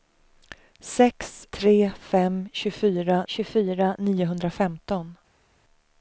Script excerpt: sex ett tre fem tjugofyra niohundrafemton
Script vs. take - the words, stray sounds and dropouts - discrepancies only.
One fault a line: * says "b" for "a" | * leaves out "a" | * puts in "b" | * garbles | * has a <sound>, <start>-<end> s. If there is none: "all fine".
* leaves out "ett"
* puts in "tjugofyra"